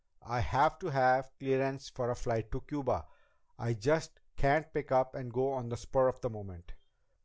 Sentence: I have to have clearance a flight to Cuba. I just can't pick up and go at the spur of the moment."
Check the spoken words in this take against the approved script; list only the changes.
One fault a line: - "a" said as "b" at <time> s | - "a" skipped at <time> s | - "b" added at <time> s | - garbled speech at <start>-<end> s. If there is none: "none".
- "for" added at 1.9 s
- "at" said as "on" at 5.5 s